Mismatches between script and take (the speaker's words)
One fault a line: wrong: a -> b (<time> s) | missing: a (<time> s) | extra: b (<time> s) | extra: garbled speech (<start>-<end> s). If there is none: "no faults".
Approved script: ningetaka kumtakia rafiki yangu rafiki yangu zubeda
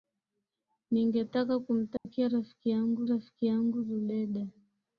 no faults